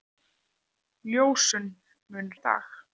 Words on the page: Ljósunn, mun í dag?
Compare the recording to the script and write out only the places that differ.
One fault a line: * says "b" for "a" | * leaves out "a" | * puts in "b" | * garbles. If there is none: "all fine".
all fine